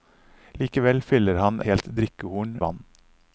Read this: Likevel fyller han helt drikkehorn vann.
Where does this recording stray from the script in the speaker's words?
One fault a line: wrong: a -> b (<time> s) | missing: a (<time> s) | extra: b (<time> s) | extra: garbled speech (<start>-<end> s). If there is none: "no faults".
no faults